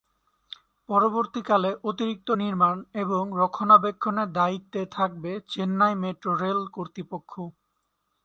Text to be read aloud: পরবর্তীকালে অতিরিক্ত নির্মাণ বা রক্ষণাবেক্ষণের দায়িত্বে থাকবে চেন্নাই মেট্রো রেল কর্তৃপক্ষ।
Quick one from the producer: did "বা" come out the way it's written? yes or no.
no